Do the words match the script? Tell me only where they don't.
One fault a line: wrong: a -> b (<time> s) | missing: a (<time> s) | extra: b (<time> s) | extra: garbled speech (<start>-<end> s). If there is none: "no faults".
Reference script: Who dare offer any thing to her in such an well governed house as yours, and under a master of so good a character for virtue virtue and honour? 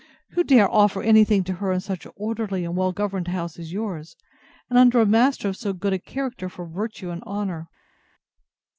extra: orderly and (2.1 s)
missing: virtue (7.1 s)